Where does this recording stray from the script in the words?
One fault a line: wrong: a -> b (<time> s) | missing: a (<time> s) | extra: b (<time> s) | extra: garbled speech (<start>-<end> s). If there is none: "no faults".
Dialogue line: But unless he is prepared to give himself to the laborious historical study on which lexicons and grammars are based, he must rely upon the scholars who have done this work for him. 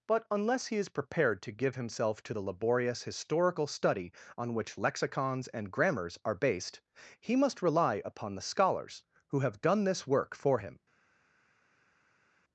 no faults